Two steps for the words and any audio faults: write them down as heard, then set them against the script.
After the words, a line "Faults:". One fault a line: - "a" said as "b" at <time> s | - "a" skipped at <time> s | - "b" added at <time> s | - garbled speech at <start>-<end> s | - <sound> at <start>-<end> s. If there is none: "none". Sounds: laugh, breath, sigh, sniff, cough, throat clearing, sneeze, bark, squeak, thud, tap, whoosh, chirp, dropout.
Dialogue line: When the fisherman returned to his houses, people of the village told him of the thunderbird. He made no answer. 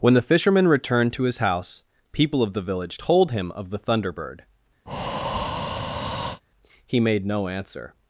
When the fisherman returned to his house, people of the village told him of the thunderbird. He made no answer.
Faults:
- "houses" said as "house" at 1.4 s
- breath at 4.9-6.4 s